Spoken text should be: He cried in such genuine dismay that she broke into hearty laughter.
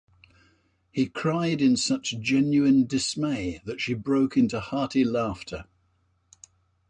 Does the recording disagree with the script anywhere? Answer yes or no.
no